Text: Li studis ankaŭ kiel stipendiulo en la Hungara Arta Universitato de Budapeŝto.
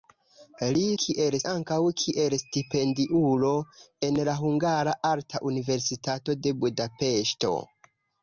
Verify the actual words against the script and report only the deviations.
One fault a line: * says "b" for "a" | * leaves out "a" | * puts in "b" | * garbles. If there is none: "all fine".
* says "kiel" for "studis"